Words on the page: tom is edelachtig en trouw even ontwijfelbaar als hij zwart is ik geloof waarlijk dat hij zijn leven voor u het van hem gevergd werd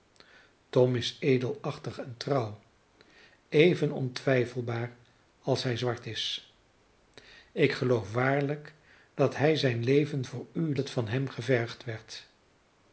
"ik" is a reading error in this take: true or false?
false